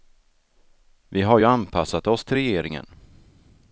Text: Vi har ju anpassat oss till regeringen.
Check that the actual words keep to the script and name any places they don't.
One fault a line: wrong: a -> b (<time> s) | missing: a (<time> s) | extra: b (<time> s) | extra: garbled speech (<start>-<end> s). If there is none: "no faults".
no faults